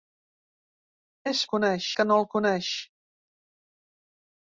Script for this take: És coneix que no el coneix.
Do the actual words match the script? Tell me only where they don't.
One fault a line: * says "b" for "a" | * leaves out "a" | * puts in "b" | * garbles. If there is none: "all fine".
all fine